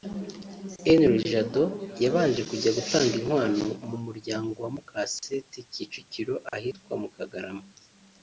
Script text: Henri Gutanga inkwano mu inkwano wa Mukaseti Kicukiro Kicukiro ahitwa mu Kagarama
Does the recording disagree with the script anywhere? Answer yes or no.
yes